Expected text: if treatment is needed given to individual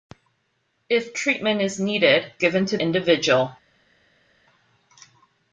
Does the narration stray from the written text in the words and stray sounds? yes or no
no